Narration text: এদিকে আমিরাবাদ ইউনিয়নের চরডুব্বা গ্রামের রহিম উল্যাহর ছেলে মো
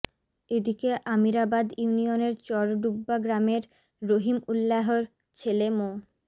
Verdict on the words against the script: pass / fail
pass